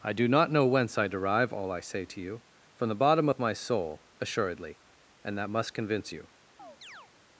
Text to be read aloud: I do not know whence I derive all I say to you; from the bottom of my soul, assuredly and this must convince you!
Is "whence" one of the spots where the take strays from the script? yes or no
no